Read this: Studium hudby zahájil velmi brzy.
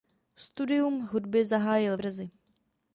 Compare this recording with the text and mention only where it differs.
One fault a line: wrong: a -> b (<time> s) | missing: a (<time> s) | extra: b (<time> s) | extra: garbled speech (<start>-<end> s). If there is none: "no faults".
missing: velmi (2.0 s)